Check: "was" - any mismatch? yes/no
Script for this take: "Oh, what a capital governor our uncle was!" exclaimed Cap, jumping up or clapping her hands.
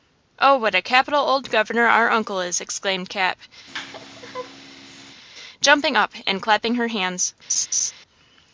yes